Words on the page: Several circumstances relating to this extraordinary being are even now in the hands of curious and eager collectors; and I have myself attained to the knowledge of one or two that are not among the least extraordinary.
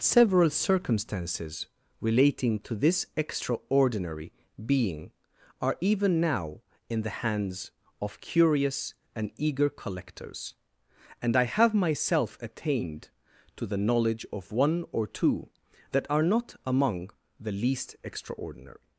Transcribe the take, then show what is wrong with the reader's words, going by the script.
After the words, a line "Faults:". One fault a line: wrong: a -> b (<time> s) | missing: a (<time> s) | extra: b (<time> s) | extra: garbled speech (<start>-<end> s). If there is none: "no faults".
Several circumstances relating to this extraordinary being are even now in the hands of curious and eager collectors; and I have myself attained to the knowledge of one or two that are not among the least extraordinary.
Faults:
no faults